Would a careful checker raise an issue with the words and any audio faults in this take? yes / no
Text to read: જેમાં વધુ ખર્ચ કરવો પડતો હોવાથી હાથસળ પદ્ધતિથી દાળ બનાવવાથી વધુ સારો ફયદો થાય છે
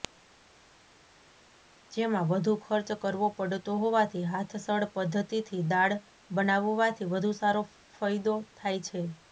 no